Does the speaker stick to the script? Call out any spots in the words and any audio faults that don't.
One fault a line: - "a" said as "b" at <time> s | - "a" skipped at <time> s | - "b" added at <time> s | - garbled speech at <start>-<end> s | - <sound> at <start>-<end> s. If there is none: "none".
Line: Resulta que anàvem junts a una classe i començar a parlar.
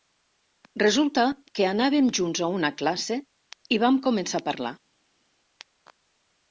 - "vam" added at 3.9 s